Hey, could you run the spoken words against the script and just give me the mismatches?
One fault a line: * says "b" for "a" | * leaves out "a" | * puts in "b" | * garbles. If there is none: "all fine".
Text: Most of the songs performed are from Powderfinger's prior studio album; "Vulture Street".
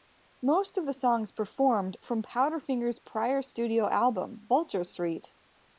* leaves out "are"